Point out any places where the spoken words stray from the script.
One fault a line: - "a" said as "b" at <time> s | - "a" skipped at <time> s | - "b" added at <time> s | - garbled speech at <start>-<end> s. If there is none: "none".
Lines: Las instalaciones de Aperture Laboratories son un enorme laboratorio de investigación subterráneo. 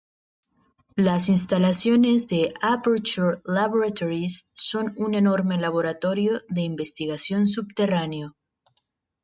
none